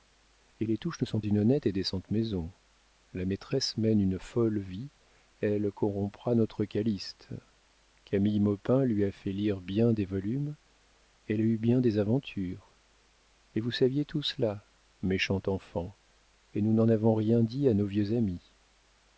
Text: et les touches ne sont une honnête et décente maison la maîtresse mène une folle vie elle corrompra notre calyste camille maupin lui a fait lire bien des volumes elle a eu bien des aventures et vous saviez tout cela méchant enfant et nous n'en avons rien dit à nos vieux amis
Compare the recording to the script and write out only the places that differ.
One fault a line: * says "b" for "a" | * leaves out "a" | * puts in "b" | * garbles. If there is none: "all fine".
all fine